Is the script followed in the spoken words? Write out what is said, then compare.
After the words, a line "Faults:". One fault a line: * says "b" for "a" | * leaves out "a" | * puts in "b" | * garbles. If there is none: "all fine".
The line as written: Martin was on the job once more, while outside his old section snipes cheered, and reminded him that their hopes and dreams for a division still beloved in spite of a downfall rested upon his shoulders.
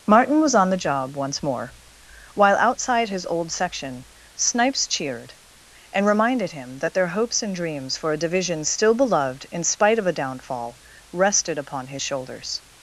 Martin was on the job once more, while outside his old section snipes cheered, and reminded him that their hopes and dreams for a division still beloved in spite of a downfall rested upon his shoulders.
Faults:
all fine